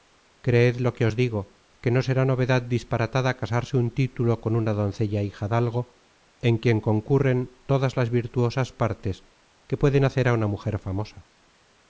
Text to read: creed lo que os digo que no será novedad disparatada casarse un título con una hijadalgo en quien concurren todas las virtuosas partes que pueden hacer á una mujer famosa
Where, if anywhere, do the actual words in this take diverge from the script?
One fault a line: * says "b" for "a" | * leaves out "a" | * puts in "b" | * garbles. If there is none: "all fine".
* puts in "doncella"